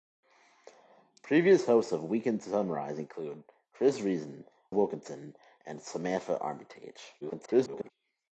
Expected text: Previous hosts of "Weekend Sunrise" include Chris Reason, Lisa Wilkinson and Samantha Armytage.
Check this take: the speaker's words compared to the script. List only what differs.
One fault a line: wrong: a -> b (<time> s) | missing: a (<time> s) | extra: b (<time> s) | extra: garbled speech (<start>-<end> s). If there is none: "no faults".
missing: Lisa (4.5 s)
extra: garbled speech (7.2-7.9 s)